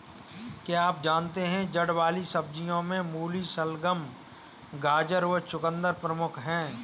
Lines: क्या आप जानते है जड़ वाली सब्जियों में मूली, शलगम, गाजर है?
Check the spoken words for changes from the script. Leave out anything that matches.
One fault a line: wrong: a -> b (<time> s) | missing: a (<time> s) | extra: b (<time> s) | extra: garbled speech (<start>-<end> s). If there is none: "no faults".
extra: व चकुंदर प्रमुख (5.3 s)